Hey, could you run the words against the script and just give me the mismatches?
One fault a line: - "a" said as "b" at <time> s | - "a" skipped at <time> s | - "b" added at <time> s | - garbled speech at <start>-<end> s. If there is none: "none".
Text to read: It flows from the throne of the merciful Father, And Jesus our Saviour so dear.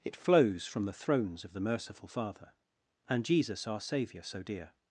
- "throne" said as "thrones" at 0.9 s